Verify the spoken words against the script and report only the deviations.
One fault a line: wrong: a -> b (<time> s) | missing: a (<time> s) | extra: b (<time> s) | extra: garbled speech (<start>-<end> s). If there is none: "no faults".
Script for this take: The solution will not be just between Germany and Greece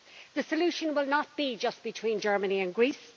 no faults